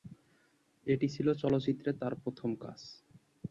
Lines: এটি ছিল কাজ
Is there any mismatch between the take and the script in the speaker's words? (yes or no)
yes